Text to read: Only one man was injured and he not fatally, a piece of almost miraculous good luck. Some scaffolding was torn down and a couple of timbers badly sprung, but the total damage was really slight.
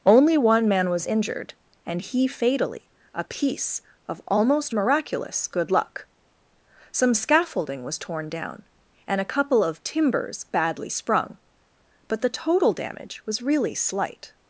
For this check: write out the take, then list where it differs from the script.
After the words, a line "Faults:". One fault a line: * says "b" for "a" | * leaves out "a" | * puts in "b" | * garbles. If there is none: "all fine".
Only one man was injured and he fatally, a piece of almost miraculous good luck. Some scaffolding was torn down and a couple of timbers badly sprung, but the total damage was really slight.
Faults:
* leaves out "not"